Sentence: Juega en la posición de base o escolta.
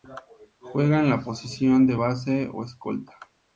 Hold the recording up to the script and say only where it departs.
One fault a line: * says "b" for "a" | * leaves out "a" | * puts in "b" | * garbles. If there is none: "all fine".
all fine